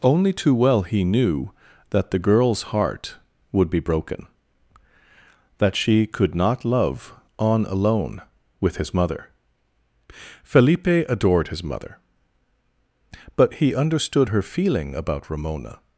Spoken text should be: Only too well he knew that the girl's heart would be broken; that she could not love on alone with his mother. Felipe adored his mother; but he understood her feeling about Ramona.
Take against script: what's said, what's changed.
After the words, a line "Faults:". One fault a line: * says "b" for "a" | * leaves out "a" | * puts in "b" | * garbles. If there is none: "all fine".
Only too well he knew that the girl's heart would be broken; that she could not love on alone with his mother. Felipe adored his mother; but he understood her feeling about Ramona.
Faults:
all fine